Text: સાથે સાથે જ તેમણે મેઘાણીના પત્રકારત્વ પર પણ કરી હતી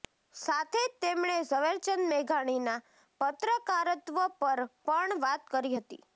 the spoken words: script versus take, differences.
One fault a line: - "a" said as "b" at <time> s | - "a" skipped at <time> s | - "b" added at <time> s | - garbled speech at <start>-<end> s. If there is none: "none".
- "સાથે" skipped at 0.8 s
- "ઝવેરચંદ" added at 1.4 s
- "વાત" added at 5.3 s